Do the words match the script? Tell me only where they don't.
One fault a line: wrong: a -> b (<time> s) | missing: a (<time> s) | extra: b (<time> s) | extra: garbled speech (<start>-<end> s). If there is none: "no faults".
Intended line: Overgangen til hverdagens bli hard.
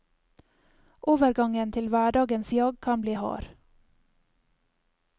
extra: jag kan (2.5 s)